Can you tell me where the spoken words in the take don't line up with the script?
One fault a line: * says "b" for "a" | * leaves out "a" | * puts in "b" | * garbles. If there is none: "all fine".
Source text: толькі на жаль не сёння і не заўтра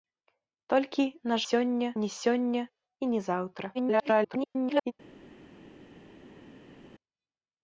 * says "сёння" for "жаль"
* garbles